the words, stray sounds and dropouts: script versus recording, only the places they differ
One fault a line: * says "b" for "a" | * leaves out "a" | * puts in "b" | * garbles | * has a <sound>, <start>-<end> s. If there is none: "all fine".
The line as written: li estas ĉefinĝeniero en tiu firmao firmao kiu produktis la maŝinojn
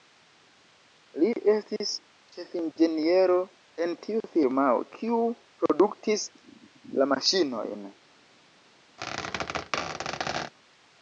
* says "estis" for "estas"
* leaves out "firmao"
* has a squeak, 9.0-10.5 s